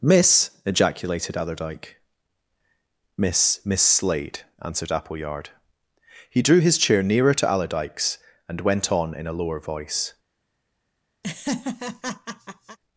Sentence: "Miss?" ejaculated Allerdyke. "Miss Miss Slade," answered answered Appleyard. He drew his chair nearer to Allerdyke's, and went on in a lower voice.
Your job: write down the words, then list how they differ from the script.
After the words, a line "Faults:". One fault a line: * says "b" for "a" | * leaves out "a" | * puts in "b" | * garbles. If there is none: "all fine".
"Miss?" ejaculated Allerdyke. "Miss Miss Slade," answered Appleyard. He drew his chair nearer to Allerdyke's, and went on in a lower voice.
Faults:
* leaves out "answered"